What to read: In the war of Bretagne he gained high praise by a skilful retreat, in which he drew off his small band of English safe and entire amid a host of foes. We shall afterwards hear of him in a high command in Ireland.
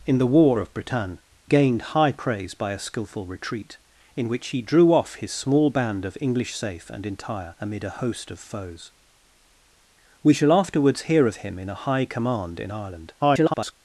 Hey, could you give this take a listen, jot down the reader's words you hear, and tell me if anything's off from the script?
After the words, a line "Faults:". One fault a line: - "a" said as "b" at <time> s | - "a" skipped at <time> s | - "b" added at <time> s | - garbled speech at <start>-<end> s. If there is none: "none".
In the war of Bretagne gained high praise by a skilful retreat, in which he drew off his small band of English safe and entire amid a host of foes. We shall afterwards hear of him in a high command in Ireland. [garbled]
Faults:
- "he" skipped at 1.2 s
- garbled speech at 13.2-13.7 s